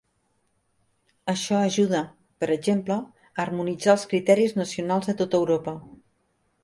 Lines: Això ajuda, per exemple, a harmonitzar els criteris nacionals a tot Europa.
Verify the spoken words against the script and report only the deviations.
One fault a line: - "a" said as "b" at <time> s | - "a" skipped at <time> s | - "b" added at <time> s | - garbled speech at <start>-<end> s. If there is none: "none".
none